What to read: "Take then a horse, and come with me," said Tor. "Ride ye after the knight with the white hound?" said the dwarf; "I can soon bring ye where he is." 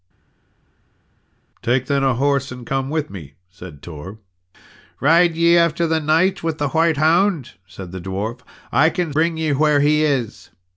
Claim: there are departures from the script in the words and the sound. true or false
true